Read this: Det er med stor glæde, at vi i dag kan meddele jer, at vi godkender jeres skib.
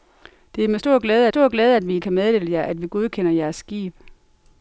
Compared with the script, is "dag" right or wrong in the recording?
wrong